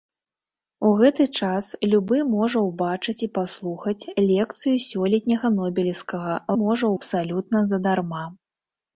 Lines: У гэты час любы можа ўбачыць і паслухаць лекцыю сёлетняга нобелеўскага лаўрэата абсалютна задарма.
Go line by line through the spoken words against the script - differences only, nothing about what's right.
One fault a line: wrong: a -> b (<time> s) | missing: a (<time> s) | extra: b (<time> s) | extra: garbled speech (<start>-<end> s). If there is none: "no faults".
wrong: лаўрэата -> можа (6.6 s)